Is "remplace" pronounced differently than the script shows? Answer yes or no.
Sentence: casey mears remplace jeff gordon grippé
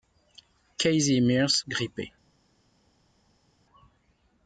yes